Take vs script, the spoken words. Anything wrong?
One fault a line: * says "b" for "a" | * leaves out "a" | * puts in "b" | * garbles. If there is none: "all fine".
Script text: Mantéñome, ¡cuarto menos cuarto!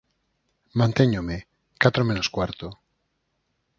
* says "catro" for "cuarto"